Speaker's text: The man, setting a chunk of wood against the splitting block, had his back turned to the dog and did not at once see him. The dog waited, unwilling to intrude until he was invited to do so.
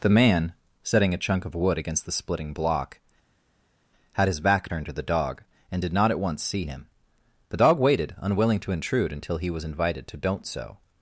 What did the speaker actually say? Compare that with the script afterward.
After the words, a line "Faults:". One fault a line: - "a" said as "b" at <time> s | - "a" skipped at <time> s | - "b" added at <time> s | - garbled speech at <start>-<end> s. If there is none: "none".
The man, setting a chunk of wood against the splitting block, had his back turned to the dog and did not at once see him. The dog waited, unwilling to intrude until he was invited to don't so.
Faults:
- "do" said as "don't" at 10.2 s